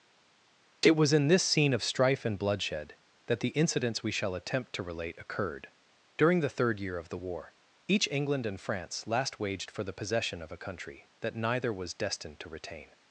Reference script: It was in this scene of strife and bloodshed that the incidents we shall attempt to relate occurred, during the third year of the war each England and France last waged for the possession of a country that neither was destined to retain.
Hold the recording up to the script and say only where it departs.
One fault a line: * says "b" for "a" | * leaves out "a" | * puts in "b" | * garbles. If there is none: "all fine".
all fine